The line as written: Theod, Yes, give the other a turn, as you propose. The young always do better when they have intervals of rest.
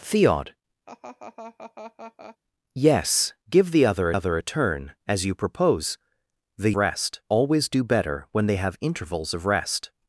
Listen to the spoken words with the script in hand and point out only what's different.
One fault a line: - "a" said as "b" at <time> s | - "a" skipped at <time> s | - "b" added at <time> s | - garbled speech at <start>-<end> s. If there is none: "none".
- "other" added at 4.1 s
- "young" said as "rest" at 6.8 s